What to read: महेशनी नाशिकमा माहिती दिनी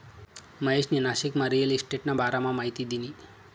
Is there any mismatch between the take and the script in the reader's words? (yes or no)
yes